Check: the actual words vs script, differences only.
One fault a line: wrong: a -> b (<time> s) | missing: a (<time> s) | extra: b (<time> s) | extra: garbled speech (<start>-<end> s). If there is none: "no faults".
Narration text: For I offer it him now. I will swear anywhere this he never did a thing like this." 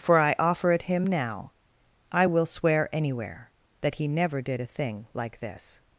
wrong: this -> that (3.8 s)